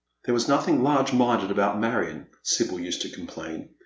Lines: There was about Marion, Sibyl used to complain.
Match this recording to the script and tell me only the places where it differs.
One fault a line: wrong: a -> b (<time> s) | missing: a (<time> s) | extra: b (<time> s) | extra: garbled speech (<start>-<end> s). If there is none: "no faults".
extra: nothing large minded (0.5 s)